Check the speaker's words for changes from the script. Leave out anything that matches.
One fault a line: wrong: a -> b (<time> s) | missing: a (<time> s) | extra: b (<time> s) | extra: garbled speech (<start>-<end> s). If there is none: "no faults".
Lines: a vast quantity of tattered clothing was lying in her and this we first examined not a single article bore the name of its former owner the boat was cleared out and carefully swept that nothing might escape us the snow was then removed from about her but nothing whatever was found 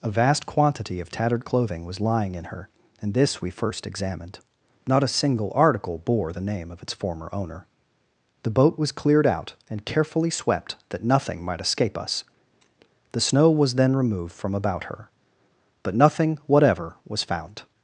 no faults